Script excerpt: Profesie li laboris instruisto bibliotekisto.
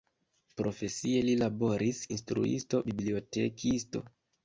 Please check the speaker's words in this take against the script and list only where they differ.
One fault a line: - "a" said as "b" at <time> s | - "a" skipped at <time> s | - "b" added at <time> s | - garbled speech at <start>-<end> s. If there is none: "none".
none